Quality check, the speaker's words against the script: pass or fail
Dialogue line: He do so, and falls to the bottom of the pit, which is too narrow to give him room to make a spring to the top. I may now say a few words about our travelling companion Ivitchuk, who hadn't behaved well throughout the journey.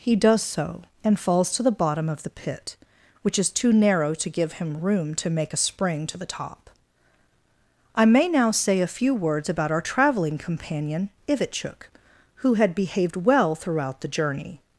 fail